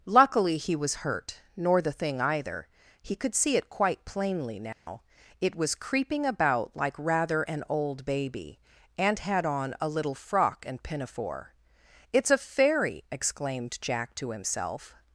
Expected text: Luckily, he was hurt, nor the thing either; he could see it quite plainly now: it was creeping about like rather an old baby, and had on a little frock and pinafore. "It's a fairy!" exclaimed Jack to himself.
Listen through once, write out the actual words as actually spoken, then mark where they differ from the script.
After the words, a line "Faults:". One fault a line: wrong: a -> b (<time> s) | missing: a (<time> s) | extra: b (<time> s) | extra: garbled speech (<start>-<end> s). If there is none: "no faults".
Luckily, he was hurt, nor the thing either; he could see it quite plainly now: it was creeping about like rather an old baby, and had on a little frock and pinafore. "It's a fairy!" exclaimed Jack to himself.
Faults:
no faults